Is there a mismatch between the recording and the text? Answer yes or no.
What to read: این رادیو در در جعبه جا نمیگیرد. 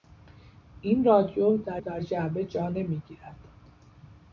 no